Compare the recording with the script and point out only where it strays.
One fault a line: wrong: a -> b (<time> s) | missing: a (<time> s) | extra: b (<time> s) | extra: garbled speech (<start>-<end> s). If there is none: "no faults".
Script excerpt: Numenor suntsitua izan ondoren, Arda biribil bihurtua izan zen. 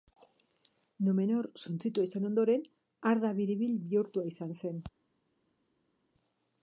no faults